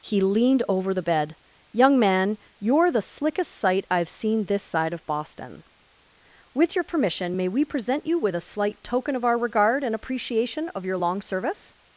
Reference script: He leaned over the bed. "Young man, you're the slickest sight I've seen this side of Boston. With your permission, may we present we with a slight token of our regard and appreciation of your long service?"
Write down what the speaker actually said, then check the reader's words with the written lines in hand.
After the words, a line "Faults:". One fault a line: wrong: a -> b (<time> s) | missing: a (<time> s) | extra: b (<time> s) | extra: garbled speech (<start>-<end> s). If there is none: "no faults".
He leaned over the bed. "Young man, you're the slickest sight I've seen this side of Boston. With your permission, may we present you with a slight token of our regard and appreciation of your long service?"
Faults:
wrong: we -> you (8.1 s)